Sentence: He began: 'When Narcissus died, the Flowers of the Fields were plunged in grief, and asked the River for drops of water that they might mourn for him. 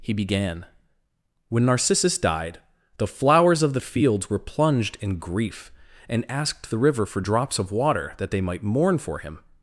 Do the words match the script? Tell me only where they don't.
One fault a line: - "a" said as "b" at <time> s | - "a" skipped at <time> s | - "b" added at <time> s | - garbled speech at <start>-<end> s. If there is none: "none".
none